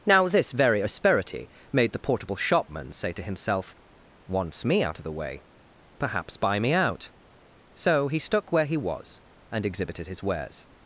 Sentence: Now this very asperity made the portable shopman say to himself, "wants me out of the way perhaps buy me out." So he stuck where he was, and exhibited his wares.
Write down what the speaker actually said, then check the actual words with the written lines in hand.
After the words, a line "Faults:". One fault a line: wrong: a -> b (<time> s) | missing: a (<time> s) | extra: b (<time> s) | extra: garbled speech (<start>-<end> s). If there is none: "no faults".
Now this very asperity made the portable shopman say to himself, "wants me out of the way perhaps buy me out." So he stuck where he was, and exhibited his wares.
Faults:
no faults